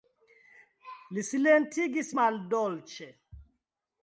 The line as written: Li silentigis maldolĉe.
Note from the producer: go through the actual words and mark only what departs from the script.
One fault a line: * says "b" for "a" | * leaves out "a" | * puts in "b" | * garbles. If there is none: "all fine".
all fine